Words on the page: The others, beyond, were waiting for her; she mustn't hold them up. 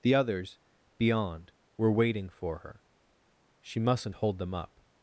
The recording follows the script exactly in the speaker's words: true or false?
true